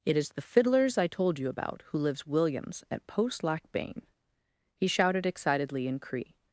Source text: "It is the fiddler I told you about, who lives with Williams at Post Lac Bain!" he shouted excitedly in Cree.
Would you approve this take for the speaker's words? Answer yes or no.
no